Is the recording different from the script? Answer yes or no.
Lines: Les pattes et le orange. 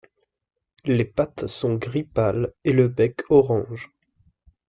yes